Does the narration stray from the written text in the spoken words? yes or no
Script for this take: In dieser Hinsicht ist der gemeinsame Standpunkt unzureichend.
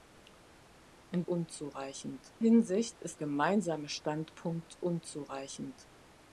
yes